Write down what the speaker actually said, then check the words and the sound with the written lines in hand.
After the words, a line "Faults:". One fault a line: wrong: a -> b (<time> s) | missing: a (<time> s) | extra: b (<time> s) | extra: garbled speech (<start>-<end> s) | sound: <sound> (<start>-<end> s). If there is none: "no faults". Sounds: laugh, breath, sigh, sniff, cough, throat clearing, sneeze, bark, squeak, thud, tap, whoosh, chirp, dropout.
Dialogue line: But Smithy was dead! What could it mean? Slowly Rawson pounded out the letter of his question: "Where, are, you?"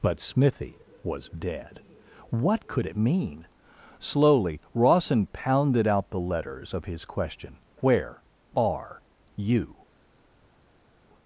But Smithy was dead! What could it mean? Slowly Rawson pounded out the letters of his question: "Where, are, you?"
Faults:
wrong: letter -> letters (6.2 s)